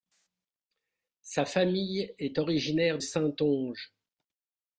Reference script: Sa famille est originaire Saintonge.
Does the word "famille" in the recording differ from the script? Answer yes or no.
no